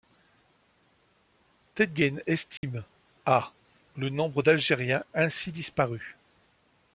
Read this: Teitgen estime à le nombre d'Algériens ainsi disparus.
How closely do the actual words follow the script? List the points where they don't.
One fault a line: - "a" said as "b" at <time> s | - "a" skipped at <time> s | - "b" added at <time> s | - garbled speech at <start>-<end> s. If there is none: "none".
none